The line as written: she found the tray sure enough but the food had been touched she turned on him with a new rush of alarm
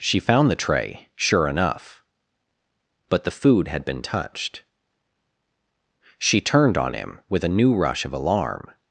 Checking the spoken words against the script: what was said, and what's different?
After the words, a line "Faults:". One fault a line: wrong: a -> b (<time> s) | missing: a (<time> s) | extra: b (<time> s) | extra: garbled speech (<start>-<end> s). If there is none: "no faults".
she found the tray sure enough but the food had been touched she turned on him with a new rush of alarm
Faults:
no faults